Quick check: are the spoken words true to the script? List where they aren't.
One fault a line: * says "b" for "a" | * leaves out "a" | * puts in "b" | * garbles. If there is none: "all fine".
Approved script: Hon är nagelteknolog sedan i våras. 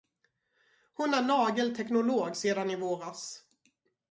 all fine